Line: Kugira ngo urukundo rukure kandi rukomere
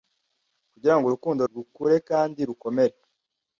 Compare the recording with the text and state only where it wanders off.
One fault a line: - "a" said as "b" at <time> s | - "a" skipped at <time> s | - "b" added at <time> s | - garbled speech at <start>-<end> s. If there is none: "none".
none